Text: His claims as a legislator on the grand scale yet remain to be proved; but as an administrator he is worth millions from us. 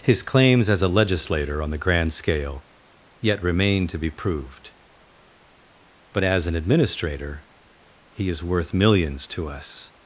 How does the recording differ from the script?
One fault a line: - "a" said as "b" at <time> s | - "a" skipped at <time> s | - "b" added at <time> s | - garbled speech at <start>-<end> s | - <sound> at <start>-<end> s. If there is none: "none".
- "from" said as "to" at 9.3 s